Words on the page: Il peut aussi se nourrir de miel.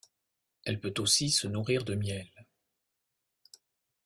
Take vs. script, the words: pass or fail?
fail